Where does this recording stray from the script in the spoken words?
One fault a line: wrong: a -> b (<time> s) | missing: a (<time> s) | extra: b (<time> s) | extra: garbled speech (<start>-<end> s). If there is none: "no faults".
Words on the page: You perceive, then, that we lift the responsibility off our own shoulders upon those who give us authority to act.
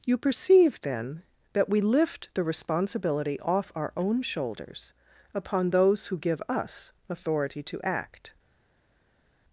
no faults